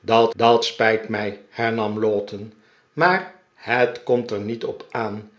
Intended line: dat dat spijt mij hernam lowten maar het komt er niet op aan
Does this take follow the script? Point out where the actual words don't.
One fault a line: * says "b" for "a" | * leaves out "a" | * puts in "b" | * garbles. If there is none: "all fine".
all fine